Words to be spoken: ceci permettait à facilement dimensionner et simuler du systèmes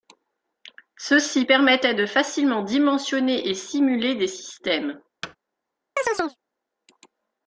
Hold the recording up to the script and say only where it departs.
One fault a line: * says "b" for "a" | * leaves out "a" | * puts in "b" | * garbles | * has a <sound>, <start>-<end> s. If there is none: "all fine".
* says "de" for "à"
* says "des" for "du"
* has a thud, 5.2-5.4 s
* has a chirp, 6.0-6.4 s